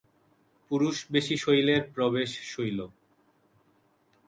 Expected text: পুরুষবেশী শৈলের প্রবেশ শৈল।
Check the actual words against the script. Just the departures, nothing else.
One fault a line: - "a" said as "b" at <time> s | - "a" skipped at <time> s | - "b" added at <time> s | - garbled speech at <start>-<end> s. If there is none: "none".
none